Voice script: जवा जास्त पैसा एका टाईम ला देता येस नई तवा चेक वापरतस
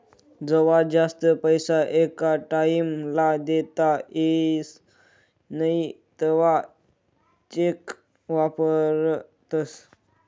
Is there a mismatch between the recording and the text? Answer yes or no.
no